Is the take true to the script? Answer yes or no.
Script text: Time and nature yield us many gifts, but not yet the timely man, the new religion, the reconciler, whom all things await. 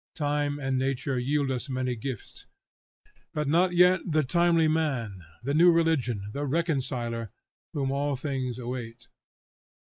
yes